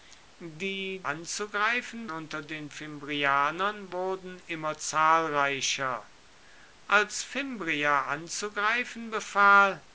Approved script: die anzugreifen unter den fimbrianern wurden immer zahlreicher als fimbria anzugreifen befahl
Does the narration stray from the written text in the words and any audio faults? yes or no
no